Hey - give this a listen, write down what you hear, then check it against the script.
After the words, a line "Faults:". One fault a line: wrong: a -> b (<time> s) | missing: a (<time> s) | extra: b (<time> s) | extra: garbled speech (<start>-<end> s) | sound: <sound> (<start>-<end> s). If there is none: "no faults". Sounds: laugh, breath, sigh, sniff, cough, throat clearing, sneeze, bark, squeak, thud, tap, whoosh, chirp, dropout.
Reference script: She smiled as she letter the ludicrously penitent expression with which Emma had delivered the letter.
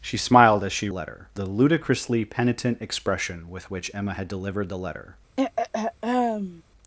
She smiled as she letter the ludicrously penitent expression with which Emma had delivered the letter.
Faults:
sound: throat clearing (5.4-6.6 s)